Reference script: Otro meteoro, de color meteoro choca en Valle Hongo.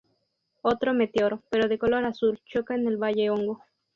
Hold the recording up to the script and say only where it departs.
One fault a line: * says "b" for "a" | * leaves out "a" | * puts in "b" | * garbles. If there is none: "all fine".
* puts in "pero"
* says "azul" for "meteoro"
* puts in "el"